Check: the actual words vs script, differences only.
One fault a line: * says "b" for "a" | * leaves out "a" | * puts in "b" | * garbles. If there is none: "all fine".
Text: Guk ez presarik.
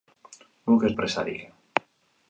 all fine